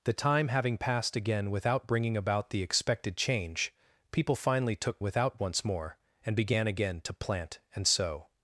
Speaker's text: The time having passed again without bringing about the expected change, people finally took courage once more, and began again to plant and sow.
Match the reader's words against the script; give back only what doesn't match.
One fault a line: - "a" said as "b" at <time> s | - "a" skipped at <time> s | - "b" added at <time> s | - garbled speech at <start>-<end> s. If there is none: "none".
- "courage" said as "without" at 5.0 s